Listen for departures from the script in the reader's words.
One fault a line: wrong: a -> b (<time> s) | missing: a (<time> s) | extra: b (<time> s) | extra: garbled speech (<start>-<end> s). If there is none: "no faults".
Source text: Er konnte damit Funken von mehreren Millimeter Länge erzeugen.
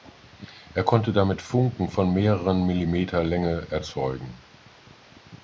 no faults